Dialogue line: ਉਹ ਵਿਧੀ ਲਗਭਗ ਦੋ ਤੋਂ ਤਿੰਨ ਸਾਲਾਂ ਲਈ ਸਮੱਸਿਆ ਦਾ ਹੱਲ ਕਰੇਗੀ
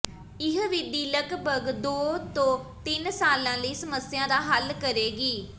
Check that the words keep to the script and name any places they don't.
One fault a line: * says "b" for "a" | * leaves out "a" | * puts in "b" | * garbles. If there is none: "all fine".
* says "ਇਹ" for "ਉਹ"